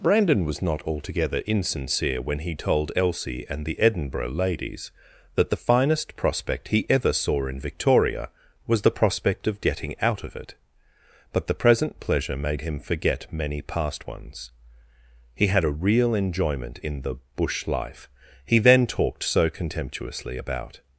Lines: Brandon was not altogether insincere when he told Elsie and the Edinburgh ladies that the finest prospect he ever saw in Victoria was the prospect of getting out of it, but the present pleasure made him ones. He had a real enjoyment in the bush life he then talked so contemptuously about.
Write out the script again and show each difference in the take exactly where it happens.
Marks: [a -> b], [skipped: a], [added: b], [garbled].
Brandon was not altogether insincere when he told Elsie and the Edinburgh ladies that the finest prospect he ever saw in Victoria was the prospect of getting out of it, but the present pleasure made him [added: forget many past] ones. He had a real enjoyment in the bush life he then talked so contemptuously about.